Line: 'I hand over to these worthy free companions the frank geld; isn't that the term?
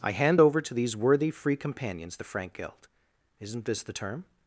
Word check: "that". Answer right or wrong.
wrong